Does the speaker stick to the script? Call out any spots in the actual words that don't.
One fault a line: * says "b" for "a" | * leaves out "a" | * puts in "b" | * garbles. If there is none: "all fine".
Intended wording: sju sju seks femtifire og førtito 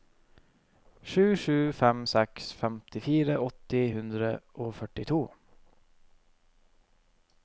* puts in "fem"
* puts in "åtte hundre"